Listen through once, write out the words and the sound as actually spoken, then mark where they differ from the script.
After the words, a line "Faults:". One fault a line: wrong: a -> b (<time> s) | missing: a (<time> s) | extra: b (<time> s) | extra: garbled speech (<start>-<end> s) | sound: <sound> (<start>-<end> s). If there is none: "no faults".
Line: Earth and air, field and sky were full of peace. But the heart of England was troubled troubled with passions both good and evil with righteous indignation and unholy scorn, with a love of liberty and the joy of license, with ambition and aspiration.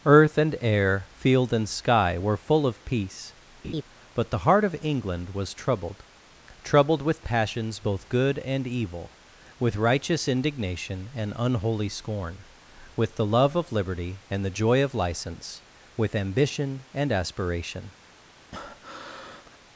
Earth and air, field and sky were full of peace. But the heart of England was troubled troubled with passions both good and evil with righteous indignation and unholy scorn, with the love of liberty and the joy of license, with ambition and aspiration.
Faults:
sound: laugh (3.6-3.8 s)
wrong: a -> the (13.1 s)
sound: breath (18.5-19.6 s)